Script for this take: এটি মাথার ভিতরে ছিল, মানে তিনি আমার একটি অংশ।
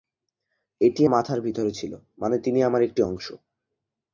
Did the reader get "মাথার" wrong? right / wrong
right